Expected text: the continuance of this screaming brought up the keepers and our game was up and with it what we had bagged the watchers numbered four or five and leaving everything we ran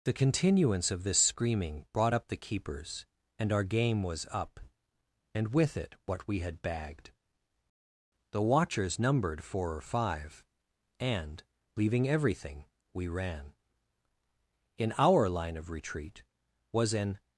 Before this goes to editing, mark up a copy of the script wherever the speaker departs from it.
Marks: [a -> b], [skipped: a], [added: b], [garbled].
the continuance of this screaming brought up the keepers and our game was up and with it what we had bagged the watchers numbered four or five and leaving everything we ran [added: in our line of retreat was an]